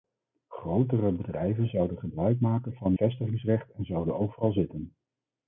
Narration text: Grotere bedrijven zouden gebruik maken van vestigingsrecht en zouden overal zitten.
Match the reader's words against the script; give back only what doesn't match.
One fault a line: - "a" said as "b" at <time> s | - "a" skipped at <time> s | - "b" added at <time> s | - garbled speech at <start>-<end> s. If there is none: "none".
none